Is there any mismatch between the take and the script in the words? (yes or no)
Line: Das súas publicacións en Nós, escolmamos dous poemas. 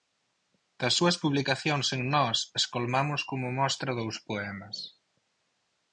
yes